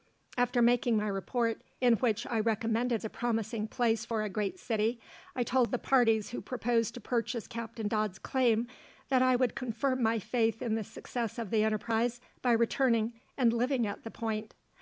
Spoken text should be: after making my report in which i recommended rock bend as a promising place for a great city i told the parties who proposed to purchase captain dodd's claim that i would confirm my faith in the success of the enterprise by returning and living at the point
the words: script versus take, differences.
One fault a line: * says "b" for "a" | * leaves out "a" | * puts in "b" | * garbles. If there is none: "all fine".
* leaves out "rock bend as"